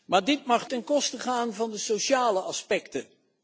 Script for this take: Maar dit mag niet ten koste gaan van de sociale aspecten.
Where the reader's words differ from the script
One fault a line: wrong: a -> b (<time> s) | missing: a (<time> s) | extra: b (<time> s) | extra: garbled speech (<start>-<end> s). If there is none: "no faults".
missing: niet (0.7 s)